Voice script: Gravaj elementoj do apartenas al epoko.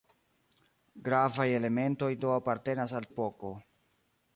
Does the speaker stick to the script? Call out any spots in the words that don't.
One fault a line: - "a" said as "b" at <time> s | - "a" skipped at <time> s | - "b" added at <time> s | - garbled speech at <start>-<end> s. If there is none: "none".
none